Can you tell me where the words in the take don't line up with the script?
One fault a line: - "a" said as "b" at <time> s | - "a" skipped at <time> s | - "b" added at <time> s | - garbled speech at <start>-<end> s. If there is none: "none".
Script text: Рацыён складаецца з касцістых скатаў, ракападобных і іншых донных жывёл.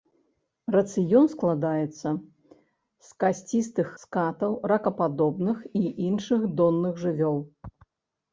none